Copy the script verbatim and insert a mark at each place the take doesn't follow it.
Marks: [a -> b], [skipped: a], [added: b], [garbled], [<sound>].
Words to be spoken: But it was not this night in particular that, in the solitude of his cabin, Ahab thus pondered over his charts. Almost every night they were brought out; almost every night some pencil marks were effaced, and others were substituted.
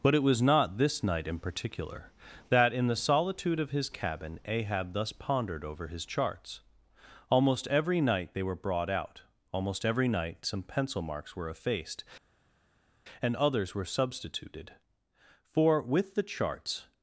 But it was not this night in particular that, in the solitude of his cabin, Ahab thus pondered over his charts. Almost every night they were brought out; almost every night some pencil marks were effaced, and others were substituted. [added: For with the charts]